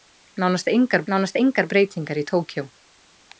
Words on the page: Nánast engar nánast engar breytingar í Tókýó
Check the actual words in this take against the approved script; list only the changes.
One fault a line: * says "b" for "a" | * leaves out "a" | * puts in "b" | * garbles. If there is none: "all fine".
all fine